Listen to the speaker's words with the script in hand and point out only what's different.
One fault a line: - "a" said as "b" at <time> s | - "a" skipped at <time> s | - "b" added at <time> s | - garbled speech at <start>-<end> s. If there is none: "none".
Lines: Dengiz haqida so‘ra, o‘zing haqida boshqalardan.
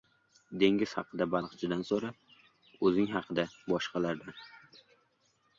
- "baliqchidan" added at 1.3 s